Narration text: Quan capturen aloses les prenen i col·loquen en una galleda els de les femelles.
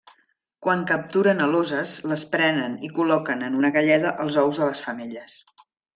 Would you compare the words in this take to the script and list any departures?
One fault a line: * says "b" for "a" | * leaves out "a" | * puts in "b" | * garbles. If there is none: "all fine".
* puts in "ous"